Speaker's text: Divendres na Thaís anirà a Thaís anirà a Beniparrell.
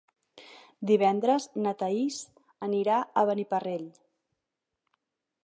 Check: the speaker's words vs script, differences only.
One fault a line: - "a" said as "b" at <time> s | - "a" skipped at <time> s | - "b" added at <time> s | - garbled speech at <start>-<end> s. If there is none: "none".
- "Thaís anirà a" skipped at 3.2 s